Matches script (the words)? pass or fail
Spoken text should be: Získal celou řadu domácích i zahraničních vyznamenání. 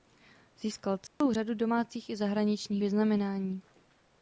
pass